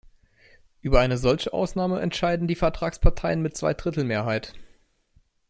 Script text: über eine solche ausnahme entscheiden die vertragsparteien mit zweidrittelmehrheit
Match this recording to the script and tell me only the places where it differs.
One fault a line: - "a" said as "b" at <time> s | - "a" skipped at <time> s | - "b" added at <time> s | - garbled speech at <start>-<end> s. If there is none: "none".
none